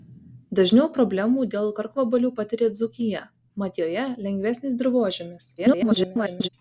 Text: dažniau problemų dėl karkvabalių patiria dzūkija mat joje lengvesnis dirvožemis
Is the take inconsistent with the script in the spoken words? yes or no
yes